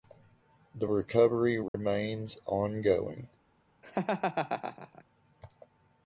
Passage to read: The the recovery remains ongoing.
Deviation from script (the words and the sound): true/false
true